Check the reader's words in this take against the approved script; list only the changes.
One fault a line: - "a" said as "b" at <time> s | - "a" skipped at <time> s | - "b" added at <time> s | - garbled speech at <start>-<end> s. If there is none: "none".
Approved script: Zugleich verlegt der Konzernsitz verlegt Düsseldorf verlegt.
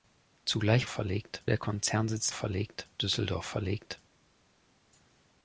none